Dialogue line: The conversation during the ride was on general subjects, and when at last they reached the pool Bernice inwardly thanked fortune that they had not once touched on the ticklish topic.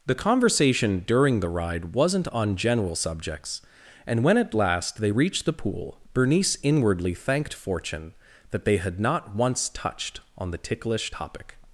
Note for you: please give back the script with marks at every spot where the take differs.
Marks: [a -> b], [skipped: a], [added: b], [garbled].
The conversation during the ride [was -> wasn't] on general subjects, and when at last they reached the pool Bernice inwardly thanked fortune that they had not once touched on the ticklish topic.